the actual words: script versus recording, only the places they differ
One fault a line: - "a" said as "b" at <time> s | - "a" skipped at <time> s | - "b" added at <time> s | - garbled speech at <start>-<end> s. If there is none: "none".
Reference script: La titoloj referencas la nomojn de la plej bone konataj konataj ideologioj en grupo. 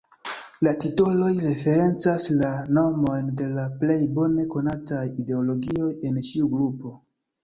- "konataj" skipped at 5.0 s
- "ĉiu" added at 6.3 s